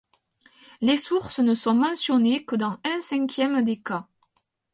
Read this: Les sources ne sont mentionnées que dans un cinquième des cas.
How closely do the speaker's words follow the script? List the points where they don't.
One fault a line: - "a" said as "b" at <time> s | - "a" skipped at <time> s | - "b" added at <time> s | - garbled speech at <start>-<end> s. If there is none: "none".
none